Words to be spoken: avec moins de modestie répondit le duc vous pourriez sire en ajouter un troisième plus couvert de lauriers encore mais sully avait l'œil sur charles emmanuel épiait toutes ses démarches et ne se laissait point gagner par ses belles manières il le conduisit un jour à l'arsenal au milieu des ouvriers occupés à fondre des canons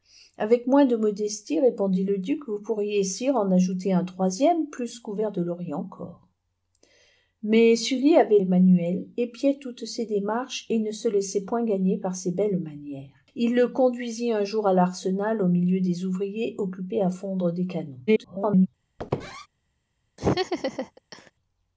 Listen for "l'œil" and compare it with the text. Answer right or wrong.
wrong